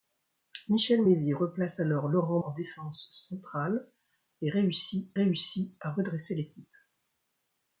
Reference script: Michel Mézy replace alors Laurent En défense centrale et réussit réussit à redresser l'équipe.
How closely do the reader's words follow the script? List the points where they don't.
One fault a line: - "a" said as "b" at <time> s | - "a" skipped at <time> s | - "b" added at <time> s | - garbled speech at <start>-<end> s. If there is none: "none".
none